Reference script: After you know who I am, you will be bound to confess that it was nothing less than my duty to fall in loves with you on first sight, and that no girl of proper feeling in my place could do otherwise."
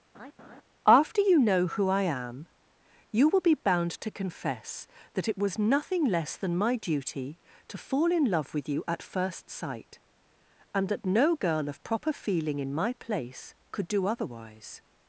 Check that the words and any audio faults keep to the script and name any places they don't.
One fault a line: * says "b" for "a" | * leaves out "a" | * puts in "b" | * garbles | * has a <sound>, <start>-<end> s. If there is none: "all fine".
* has a laugh, 0.1-0.6 s
* says "love" for "loves"
* says "at" for "on"